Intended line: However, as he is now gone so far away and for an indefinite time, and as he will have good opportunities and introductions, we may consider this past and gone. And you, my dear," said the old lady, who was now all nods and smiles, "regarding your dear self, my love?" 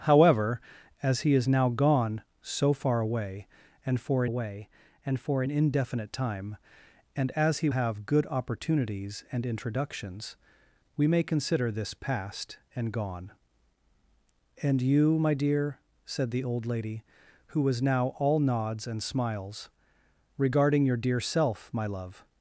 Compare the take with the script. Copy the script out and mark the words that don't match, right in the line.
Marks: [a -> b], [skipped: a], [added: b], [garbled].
However, as he is now gone so far away and for [added: away and for] an indefinite time, and as he [skipped: will] have good opportunities and introductions, we may consider this past and gone. And you, my dear," said the old lady, who was now all nods and smiles, "regarding your dear self, my love?"